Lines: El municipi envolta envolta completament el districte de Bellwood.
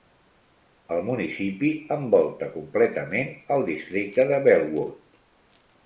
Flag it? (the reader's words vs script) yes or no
yes